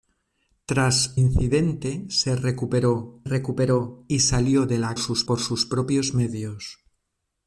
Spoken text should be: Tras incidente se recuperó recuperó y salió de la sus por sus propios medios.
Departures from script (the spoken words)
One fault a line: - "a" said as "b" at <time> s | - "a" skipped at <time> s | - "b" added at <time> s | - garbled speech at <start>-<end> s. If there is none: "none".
none